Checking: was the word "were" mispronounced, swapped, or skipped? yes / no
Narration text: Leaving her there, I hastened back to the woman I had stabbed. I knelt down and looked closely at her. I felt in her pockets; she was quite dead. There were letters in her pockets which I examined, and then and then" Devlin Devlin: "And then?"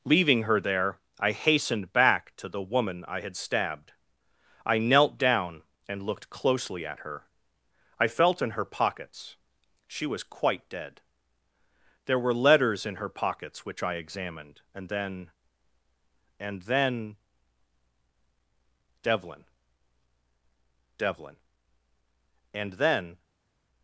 no